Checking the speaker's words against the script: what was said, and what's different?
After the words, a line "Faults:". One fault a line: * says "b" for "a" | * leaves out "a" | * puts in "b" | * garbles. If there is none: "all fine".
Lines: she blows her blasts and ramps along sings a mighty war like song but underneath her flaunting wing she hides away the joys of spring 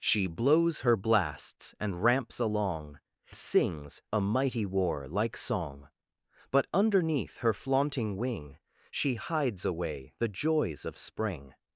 she blows her blasts and ramps along sings a mighty war like song but underneath her flaunting wing she hides away the joys of spring
Faults:
all fine